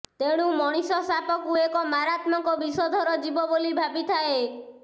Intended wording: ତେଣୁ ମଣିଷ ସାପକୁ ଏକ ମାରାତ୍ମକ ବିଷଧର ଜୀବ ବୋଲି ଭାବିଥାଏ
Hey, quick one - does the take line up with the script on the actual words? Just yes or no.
yes